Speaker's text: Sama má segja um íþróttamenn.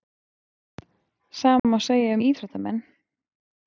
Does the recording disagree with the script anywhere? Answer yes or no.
no